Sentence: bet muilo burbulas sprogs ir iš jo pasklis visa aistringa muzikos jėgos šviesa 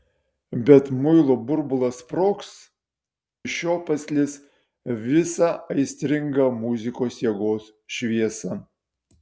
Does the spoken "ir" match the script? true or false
false